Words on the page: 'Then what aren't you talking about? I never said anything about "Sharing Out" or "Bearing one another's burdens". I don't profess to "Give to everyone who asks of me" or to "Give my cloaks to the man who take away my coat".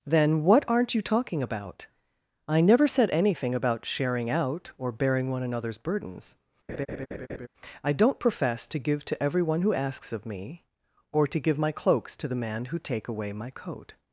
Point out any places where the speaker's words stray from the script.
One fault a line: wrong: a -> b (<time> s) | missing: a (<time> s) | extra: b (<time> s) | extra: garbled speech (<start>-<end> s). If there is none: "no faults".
no faults